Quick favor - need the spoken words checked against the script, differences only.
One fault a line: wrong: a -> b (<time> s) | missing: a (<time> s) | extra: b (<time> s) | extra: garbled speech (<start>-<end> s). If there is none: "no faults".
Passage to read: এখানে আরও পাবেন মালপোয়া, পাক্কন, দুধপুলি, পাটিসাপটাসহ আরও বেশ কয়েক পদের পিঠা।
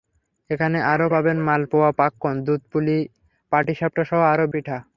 missing: বেশ কয়েক পদের (4.5 s)